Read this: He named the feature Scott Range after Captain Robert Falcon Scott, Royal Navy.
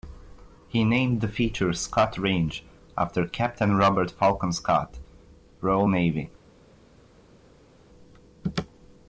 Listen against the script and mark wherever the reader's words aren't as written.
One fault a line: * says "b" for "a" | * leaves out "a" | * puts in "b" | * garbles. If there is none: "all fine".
all fine